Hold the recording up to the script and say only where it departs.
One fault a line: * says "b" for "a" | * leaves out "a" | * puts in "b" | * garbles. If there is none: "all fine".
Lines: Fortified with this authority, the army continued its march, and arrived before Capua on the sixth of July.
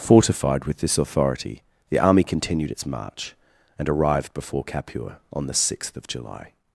all fine